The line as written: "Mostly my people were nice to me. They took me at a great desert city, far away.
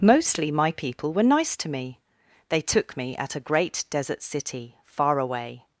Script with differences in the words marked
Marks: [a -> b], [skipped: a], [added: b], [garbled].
"Mostly my people were nice to me. They took me at a great desert city, far away.